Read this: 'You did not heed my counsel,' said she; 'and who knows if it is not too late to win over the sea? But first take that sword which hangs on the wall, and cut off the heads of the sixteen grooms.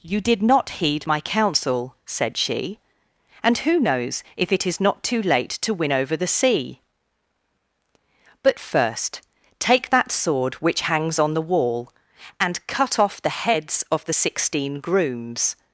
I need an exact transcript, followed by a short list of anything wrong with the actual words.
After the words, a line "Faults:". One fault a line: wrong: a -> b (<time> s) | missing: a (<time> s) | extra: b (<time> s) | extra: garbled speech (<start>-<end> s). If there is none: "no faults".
'You did not heed my counsel,' said she; 'and who knows if it is not too late to win over the sea? But first take that sword which hangs on the wall, and cut off the heads of the sixteen grooms.
Faults:
no faults